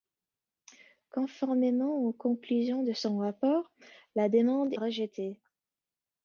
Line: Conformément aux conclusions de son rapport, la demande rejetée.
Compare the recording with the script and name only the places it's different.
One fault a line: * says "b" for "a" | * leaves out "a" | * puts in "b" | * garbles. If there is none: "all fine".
all fine